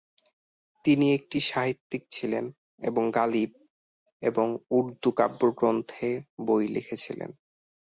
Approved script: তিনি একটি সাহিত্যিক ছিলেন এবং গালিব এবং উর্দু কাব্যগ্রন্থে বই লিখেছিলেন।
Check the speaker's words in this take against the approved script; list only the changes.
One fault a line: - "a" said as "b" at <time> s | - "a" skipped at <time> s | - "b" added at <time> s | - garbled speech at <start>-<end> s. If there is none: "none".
none